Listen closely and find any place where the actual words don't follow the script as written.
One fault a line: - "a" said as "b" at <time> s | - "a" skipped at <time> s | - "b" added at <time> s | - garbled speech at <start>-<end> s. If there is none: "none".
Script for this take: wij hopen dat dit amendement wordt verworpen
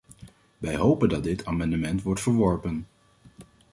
none